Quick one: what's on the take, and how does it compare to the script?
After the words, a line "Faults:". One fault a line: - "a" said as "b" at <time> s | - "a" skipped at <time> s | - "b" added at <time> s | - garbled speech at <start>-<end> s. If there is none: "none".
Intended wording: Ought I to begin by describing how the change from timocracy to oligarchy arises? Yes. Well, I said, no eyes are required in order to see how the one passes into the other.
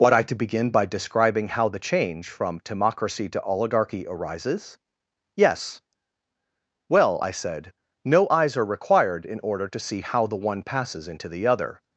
Ought I to begin by describing how the change from timocracy to oligarchy arises? Yes. Well, I said, no eyes are required in order to see how the one passes into the other.
Faults:
none